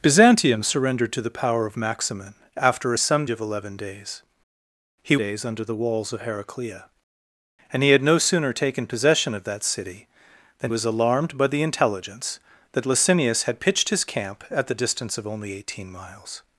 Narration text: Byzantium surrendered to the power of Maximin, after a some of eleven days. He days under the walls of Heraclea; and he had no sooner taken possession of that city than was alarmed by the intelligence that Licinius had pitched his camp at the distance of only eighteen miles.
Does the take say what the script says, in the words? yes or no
yes